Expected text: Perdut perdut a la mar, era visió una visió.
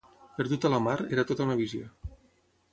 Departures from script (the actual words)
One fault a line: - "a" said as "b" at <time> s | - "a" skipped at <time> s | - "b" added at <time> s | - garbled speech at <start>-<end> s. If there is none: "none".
- "perdut" skipped at 0.7 s
- "visió" said as "tota" at 1.3 s